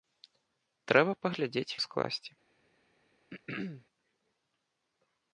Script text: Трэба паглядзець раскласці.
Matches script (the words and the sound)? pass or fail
fail